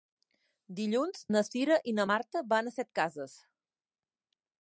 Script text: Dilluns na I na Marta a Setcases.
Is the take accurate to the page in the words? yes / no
no